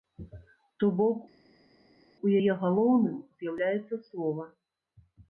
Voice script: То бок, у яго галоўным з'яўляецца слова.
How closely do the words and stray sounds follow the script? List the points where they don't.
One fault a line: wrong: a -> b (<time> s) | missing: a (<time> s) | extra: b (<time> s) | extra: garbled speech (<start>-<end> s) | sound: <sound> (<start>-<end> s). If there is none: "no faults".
wrong: яго -> яе (2.4 s)